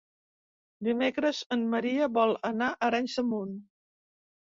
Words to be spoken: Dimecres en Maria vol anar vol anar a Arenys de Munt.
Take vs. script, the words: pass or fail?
fail